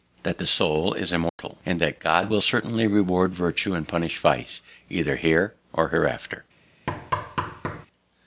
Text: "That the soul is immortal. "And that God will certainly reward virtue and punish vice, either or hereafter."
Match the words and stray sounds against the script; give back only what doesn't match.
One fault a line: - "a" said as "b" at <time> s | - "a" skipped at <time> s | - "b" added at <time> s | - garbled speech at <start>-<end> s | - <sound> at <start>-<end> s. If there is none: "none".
- dropout at 1.3-1.4 s
- "here" added at 5.1 s
- thud at 6.9-7.9 s